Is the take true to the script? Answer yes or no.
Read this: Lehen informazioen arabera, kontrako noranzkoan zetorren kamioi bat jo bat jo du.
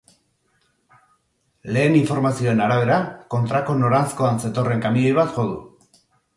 no